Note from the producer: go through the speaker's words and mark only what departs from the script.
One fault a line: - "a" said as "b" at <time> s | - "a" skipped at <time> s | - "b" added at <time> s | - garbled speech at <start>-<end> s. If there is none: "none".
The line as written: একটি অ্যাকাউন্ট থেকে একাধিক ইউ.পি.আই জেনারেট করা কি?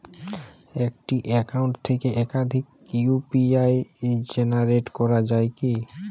- "যায়" added at 5.3 s